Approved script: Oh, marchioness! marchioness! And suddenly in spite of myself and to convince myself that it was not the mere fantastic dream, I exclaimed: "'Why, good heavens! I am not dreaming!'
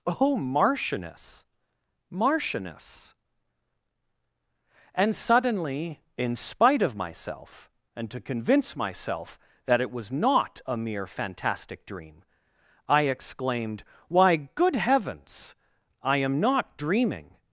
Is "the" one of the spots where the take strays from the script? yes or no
yes